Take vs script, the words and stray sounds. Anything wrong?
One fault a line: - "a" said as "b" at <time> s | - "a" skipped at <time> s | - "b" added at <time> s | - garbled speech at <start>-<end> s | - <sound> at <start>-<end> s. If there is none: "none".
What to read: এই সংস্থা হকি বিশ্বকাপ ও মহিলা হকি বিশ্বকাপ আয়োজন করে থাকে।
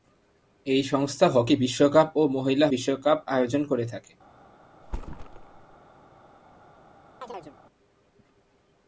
- "হকি" skipped at 2.7 s
- thud at 4.8-5.8 s
- chirp at 7.2-7.6 s